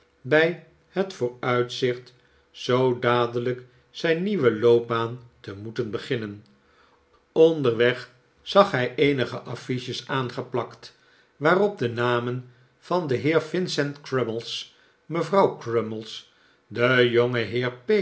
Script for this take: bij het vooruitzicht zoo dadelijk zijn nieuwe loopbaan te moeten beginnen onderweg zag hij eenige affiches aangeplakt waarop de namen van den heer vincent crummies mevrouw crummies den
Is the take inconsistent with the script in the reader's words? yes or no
no